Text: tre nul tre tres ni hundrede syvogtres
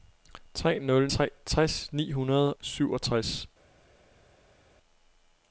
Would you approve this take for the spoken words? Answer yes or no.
yes